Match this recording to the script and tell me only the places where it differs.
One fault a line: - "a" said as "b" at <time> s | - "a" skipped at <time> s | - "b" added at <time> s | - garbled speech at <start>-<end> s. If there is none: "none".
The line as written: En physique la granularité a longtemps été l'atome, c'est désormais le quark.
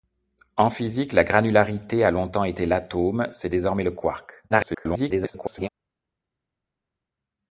- garbled speech at 4.5-5.7 s